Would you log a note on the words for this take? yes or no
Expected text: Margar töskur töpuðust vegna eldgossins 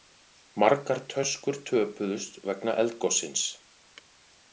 no